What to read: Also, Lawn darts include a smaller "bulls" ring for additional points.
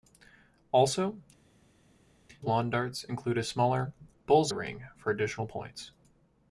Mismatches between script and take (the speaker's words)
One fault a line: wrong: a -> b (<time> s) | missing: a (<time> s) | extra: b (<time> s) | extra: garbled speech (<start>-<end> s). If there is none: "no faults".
no faults